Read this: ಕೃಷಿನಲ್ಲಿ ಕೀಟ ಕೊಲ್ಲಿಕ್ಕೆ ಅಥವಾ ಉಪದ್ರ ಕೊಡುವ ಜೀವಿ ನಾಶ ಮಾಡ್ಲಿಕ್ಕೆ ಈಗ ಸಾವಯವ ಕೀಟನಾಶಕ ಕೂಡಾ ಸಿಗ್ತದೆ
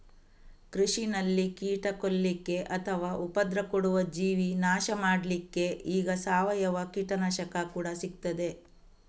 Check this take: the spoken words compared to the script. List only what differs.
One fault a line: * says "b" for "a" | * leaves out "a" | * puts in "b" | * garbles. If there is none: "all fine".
all fine